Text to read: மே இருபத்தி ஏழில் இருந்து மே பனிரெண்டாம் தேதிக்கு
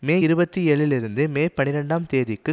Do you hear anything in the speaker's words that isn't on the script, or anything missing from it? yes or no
no